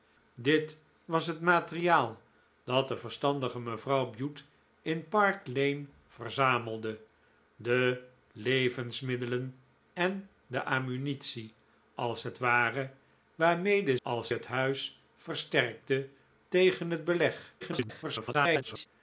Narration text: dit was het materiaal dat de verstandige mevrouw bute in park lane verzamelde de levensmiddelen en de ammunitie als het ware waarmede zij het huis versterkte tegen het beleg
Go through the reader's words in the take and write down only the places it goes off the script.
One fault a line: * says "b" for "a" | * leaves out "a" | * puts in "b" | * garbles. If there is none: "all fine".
* says "als" for "zij"
* garbles